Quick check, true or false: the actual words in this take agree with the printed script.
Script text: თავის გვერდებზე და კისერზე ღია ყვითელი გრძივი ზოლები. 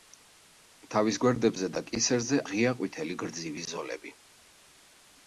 true